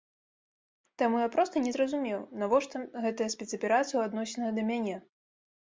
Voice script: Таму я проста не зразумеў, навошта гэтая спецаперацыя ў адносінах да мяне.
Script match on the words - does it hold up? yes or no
yes